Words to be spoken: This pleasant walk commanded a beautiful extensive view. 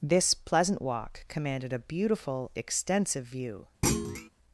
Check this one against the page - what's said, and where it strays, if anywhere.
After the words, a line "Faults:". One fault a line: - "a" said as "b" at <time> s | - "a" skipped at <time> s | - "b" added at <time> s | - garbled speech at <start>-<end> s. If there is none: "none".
This pleasant walk commanded a beautiful extensive view.
Faults:
none